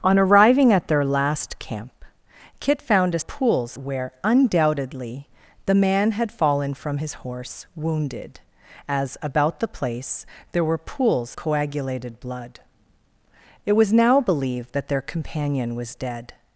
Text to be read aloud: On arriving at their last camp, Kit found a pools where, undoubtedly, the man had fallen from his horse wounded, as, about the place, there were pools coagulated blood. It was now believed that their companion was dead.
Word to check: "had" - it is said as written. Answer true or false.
true